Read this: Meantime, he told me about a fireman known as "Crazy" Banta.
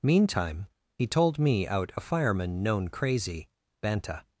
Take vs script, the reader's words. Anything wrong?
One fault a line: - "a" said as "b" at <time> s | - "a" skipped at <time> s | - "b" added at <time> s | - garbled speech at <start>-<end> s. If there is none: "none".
- "about" said as "out" at 1.7 s
- "as" skipped at 2.9 s